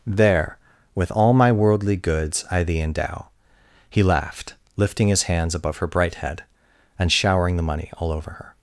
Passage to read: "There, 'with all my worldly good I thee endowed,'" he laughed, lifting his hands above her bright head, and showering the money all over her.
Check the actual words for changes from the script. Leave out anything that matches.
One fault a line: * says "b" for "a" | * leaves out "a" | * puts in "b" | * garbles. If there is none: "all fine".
* says "goods" for "good"
* says "endow" for "endowed"